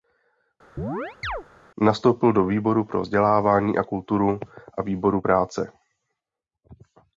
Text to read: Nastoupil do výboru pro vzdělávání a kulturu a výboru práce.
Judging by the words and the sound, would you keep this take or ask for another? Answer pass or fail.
fail